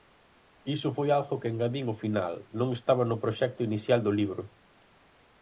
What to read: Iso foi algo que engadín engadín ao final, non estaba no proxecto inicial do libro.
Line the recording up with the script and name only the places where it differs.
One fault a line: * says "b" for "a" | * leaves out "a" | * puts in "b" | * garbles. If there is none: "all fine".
* leaves out "engadín"